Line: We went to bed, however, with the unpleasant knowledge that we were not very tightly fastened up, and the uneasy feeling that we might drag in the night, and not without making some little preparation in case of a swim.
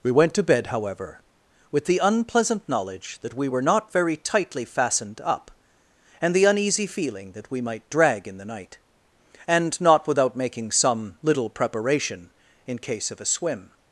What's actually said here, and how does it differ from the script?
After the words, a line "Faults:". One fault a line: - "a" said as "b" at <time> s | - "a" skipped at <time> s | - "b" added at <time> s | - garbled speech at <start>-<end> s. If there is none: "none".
We went to bed, however, with the unpleasant knowledge that we were not very tightly fastened up, and the uneasy feeling that we might drag in the night, and not without making some little preparation in case of a swim.
Faults:
none